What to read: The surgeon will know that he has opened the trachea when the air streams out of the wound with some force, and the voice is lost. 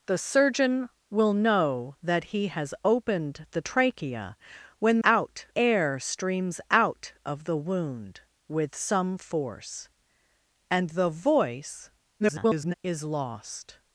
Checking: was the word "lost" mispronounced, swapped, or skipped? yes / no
no